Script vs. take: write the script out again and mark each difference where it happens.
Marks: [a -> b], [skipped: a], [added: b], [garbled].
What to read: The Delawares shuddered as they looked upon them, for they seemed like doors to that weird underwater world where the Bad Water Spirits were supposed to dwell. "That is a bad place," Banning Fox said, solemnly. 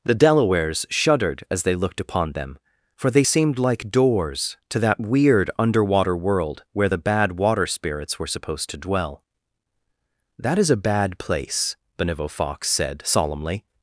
The Delawares shuddered as they looked upon them, for they seemed like doors to that weird underwater world where the Bad Water Spirits were supposed to dwell. "That is a bad place," [Banning -> Benevo] Fox said, solemnly.